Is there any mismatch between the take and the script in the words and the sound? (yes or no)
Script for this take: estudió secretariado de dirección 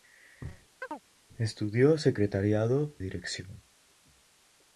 yes